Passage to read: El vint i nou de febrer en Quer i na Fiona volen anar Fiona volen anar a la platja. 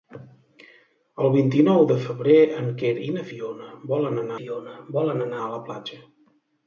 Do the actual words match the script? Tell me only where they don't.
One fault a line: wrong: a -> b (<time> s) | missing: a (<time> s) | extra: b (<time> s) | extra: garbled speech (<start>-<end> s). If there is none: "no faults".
no faults